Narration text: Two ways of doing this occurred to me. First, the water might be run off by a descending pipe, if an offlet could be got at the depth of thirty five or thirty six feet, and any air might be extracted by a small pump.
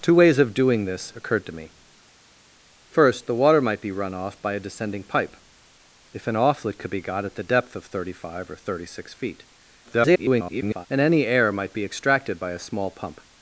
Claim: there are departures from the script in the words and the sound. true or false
true